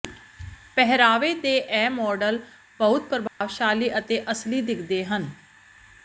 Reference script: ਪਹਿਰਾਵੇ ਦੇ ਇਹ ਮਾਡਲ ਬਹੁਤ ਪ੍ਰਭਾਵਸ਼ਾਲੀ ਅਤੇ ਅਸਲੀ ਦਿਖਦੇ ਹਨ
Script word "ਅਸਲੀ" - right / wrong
right